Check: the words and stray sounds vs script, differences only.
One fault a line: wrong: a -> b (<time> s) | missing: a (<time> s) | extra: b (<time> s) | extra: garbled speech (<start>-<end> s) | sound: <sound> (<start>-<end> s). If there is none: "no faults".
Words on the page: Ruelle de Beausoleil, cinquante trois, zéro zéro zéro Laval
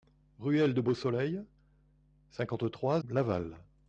missing: zéro zéro zéro (3.0 s)